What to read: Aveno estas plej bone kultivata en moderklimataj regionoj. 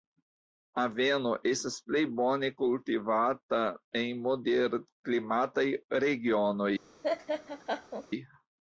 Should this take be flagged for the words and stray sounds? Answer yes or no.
yes